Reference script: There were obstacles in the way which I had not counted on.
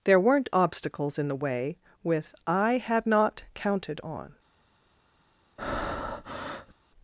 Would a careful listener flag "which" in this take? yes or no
yes